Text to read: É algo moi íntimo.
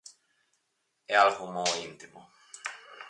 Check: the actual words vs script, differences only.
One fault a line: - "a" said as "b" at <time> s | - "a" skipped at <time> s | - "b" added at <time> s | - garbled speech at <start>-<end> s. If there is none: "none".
none